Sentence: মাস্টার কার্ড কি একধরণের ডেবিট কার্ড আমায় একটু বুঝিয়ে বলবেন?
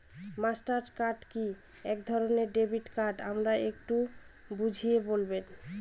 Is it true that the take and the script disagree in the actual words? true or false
false